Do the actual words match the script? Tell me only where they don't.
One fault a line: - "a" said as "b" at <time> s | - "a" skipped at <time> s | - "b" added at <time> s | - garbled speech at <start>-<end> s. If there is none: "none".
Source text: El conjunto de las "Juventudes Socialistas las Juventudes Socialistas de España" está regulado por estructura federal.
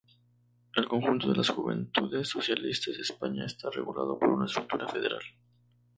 - "las Juventudes Socialistas" skipped at 3.0 s
- "una" added at 4.3 s